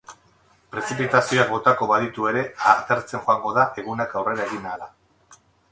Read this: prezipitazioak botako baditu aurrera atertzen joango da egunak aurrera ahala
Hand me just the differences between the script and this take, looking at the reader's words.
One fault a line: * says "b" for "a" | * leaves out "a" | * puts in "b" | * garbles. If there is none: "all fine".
* says "ere" for "aurrera"
* puts in "egin"